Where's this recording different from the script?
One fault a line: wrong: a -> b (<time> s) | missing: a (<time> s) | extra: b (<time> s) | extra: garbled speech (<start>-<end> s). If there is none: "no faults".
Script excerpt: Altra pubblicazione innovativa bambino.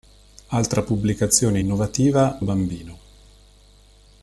no faults